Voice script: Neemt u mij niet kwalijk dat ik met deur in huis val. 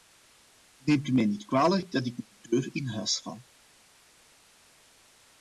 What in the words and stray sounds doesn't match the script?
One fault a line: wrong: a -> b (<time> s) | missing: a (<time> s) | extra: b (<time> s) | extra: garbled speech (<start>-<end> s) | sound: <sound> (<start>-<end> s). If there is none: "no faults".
extra: de (2.3 s)